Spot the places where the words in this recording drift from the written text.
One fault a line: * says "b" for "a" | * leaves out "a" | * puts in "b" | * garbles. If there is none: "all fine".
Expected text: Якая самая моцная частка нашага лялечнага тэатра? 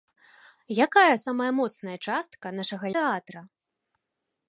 * leaves out "лялечнага"